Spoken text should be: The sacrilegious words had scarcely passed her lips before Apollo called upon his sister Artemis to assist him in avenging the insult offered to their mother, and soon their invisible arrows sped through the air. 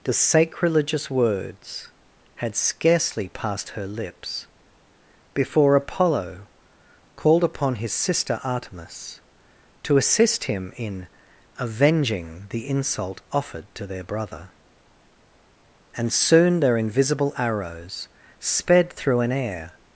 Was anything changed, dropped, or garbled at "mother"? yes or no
yes